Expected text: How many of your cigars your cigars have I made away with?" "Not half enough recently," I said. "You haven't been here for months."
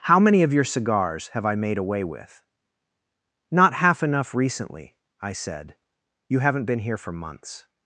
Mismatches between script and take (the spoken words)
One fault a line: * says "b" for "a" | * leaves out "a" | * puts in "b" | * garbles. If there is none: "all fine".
* leaves out "your cigars"